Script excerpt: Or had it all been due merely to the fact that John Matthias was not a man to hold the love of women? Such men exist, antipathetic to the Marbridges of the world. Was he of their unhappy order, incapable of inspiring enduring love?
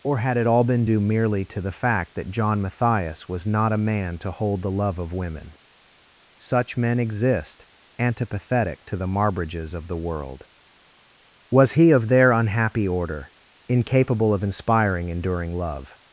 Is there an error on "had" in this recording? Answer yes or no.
no